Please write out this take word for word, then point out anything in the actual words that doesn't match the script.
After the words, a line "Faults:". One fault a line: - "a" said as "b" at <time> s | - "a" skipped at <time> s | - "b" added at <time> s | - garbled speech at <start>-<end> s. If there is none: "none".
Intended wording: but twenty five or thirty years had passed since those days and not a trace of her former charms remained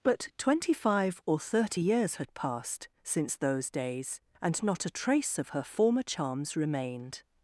but twenty five or thirty years had passed since those days and not a trace of her former charms remained
Faults:
none